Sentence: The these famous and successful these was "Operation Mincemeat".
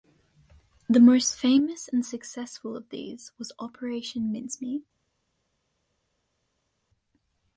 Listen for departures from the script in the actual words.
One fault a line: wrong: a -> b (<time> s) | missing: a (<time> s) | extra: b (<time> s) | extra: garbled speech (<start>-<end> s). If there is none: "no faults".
wrong: these -> most (1.0 s)
extra: of (2.8 s)